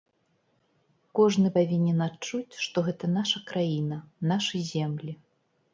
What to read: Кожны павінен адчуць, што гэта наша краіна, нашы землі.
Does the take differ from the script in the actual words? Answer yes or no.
no